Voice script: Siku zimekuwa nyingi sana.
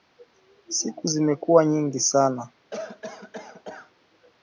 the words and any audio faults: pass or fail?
fail